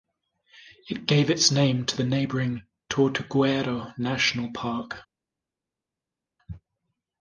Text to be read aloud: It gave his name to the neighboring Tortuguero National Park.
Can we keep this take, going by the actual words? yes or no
no